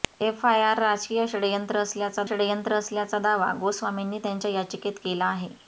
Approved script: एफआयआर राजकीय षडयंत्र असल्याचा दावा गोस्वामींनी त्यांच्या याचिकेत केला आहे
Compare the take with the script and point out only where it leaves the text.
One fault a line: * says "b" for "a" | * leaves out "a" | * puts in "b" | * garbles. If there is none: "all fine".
* puts in "षडयंत्र असल्याचा"